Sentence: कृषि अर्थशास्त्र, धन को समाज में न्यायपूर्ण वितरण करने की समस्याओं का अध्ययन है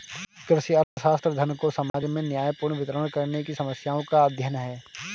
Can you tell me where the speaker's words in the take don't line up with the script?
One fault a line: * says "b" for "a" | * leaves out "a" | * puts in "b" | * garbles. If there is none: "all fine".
all fine